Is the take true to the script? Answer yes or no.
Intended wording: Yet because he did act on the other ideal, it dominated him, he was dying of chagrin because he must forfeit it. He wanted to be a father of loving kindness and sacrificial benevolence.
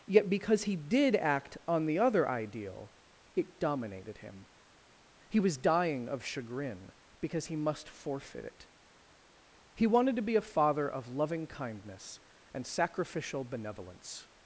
yes